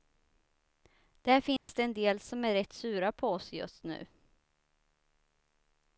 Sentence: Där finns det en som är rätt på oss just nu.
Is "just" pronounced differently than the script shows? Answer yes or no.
no